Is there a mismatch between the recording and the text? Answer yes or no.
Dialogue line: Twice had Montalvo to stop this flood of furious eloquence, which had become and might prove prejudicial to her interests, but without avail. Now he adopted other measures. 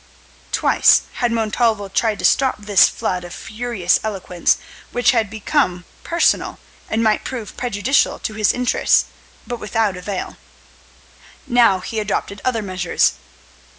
yes